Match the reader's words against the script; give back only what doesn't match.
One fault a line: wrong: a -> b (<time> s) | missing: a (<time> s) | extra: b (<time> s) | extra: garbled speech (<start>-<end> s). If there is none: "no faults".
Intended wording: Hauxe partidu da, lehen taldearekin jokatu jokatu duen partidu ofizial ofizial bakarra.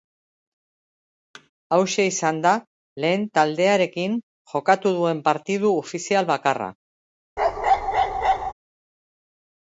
wrong: partidu -> izan (2.1 s)
missing: jokatu (4.9 s)
missing: ofizial (6.3 s)